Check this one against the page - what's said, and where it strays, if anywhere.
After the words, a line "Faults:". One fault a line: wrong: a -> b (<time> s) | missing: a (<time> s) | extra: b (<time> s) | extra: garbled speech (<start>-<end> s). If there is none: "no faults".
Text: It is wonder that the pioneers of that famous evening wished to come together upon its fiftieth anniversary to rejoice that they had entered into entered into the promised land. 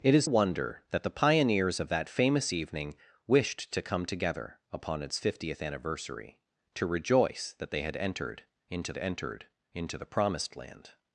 It is wonder that the pioneers of that famous evening wished to come together upon its fiftieth anniversary to rejoice that they had entered into entered into the promised land.
Faults:
no faults